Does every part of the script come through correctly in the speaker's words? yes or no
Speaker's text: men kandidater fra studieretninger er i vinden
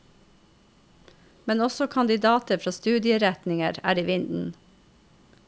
no